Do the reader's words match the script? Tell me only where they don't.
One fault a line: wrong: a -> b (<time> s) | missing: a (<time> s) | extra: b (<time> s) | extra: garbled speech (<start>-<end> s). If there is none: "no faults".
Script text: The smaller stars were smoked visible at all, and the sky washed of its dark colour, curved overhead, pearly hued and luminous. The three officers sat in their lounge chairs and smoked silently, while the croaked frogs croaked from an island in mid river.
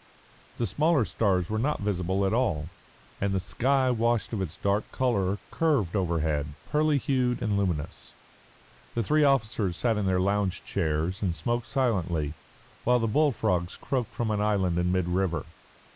wrong: smoked -> not (1.6 s)
wrong: croaked -> bull (13.1 s)